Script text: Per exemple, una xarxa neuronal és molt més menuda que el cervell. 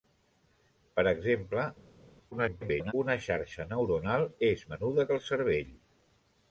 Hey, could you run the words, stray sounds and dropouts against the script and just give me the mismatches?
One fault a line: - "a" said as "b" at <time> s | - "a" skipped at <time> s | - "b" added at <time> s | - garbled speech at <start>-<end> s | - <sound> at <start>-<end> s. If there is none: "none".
- garbled speech at 2.3-2.9 s
- "molt més" skipped at 4.6 s